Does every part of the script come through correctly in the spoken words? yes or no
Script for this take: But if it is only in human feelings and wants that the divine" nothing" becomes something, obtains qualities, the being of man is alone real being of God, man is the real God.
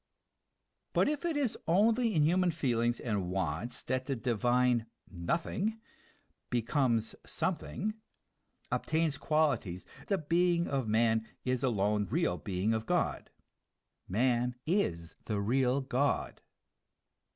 yes